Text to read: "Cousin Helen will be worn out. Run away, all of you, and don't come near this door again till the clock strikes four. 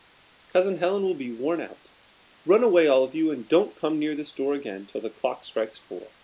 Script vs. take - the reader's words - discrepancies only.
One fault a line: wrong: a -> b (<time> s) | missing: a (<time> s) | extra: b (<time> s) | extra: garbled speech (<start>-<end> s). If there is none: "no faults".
no faults